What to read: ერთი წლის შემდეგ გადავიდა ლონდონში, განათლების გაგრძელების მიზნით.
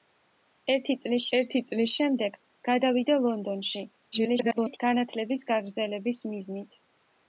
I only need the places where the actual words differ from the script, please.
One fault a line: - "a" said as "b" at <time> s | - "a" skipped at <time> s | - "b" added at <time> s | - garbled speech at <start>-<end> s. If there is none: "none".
- "ერთი წლის" added at 1.4 s
- garbled speech at 4.1-4.8 s